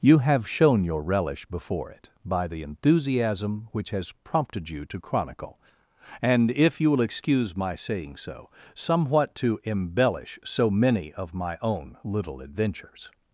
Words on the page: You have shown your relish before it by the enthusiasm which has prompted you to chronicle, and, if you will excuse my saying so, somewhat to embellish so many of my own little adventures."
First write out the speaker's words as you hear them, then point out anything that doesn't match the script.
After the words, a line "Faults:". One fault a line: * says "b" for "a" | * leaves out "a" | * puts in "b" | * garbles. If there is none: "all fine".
You have shown your relish before it by the enthusiasm which has prompted you to chronicle, and, if you will excuse my saying so, somewhat to embellish so many of my own little adventures."
Faults:
all fine